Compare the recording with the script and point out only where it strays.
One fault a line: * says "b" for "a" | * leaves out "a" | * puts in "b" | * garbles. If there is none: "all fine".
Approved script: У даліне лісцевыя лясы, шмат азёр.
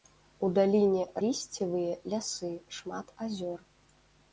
all fine